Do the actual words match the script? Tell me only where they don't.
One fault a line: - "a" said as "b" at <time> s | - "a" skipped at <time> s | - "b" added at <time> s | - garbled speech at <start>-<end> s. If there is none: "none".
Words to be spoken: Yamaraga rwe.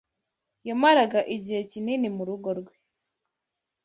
- "igihe kinini murugo" added at 1.4 s